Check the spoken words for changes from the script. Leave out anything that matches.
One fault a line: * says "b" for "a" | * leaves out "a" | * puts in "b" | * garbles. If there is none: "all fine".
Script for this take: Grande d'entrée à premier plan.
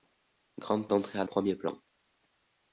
all fine